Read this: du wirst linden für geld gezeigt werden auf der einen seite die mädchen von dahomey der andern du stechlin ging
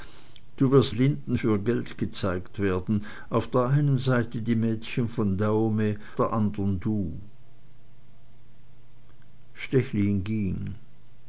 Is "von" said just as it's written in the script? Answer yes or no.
yes